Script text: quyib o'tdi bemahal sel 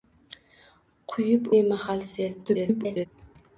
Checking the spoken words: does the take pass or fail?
fail